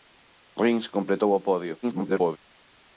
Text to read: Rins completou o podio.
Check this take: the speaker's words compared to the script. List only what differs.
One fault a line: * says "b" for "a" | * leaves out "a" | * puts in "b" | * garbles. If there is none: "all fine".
* garbles